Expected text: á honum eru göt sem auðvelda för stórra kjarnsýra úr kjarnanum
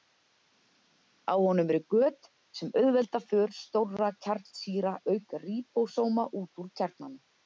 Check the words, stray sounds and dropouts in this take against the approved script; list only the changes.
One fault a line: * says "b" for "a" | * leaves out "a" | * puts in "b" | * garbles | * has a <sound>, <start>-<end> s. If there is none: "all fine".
* puts in "auk ríbósóma út"